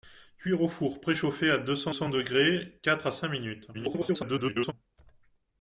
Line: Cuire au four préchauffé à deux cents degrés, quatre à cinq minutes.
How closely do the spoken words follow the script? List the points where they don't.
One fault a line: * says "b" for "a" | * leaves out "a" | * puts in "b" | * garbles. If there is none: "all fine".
* puts in "cents"
* garbles